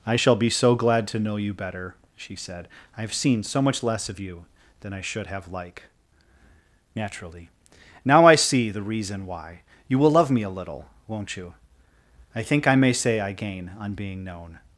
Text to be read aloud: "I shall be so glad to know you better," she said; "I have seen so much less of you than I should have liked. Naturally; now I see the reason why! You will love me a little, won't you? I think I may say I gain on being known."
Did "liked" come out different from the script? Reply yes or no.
yes